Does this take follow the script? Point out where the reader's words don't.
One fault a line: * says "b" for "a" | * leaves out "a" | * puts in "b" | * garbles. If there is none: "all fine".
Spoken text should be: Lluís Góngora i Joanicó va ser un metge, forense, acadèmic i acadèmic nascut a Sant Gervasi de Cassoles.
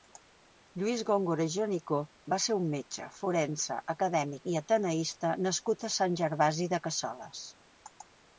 * says "ateneista" for "acadèmic"